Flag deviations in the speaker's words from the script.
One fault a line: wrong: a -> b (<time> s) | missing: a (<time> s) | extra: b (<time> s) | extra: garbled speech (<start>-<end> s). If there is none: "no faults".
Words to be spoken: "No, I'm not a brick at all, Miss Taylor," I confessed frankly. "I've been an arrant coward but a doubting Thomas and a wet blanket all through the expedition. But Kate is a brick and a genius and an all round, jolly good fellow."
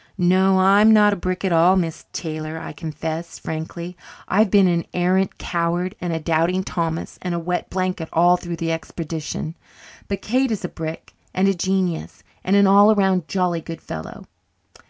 wrong: but -> and (6.0 s)